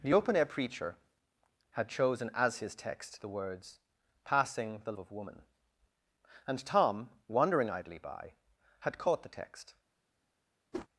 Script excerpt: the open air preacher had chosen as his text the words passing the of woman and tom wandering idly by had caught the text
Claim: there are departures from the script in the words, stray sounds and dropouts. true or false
true